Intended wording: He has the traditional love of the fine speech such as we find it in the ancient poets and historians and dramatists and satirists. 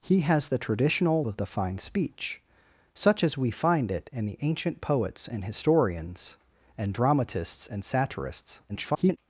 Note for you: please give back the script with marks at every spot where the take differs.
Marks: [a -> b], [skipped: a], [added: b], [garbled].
He has the traditional [skipped: love] of the fine speech such as we find it in the ancient poets and historians and dramatists and satirists. [garbled]